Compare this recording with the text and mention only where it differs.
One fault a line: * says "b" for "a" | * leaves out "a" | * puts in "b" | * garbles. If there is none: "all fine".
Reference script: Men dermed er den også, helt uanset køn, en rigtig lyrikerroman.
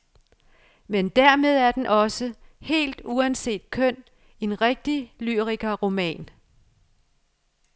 all fine